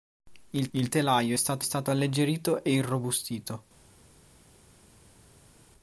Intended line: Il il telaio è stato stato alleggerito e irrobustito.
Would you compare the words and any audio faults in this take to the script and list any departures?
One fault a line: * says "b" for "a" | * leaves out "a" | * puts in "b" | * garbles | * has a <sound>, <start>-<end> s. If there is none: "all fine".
all fine